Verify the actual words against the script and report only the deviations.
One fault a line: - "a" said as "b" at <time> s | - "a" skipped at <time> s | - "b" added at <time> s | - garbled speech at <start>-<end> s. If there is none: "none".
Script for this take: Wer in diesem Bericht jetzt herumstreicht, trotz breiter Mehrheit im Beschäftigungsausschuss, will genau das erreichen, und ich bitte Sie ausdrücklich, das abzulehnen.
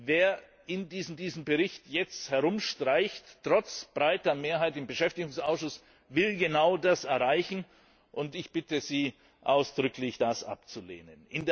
- "diesem" added at 1.2 s